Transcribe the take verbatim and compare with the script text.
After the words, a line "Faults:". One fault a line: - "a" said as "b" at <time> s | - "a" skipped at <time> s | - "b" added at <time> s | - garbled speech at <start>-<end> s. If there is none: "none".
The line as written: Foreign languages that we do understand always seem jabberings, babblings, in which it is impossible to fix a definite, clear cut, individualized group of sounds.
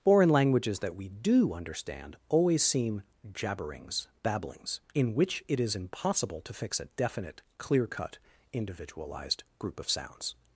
Foreign languages that we do understand always seem jabberings, babblings, in which it is impossible to fix a definite, clear cut, individualized group of sounds.
Faults:
none